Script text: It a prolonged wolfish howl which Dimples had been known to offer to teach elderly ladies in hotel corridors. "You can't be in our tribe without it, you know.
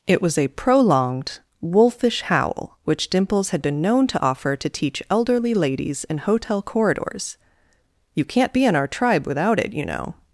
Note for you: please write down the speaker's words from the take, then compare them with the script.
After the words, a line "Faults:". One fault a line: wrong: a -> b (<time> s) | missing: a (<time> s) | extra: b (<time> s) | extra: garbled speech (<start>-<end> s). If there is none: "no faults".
It was a prolonged wolfish howl which Dimples had been known to offer to teach elderly ladies in hotel corridors. "You can't be in our tribe without it, you know.
Faults:
extra: was (0.2 s)